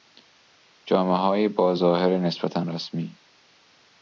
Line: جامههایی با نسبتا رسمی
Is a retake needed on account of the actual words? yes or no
yes